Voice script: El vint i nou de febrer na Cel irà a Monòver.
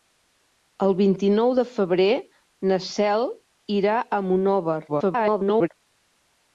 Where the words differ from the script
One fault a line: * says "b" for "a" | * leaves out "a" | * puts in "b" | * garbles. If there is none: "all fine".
* garbles